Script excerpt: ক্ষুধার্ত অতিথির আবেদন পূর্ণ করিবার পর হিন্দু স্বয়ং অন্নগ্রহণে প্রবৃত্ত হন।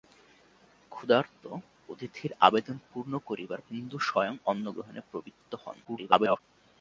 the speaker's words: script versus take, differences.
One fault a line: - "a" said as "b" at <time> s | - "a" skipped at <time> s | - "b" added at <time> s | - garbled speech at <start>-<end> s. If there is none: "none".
- "পর" skipped at 3.6 s
- garbled speech at 5.8-6.4 s